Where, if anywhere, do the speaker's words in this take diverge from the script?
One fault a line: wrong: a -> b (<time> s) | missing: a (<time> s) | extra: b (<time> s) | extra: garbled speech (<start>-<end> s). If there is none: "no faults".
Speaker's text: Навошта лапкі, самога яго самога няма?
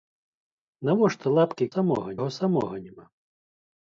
no faults